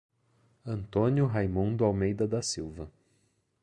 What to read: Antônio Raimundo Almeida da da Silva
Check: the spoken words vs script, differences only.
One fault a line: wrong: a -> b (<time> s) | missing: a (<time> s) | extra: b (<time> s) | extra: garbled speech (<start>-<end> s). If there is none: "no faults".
missing: da (2.4 s)